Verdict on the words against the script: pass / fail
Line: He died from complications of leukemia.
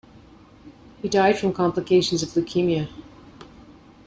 pass